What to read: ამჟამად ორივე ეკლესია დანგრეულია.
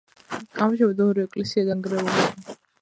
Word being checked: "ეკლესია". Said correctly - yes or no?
yes